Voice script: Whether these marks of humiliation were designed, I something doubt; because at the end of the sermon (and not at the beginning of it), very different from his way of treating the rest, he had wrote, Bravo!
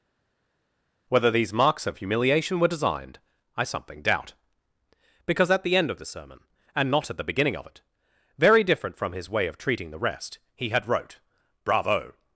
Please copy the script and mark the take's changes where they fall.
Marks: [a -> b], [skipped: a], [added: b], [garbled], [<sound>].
Whether these marks of humiliation were designed, I something doubt; because at the end of the sermon (and not at the beginning of it), very different from his way of treating the rest, he had wrote, Bravo!